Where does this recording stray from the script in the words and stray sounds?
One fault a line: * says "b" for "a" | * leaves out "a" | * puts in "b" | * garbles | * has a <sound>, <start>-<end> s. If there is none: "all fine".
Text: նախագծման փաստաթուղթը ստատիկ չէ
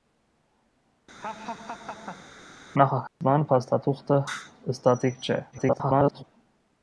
* has a laugh, 1.2-2.3 s
* has a dropout, 3.1-3.2 s
* garbles